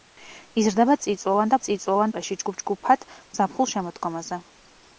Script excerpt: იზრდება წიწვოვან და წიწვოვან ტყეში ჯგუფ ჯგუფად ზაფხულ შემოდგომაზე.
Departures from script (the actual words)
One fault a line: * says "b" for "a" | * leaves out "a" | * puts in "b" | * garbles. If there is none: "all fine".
all fine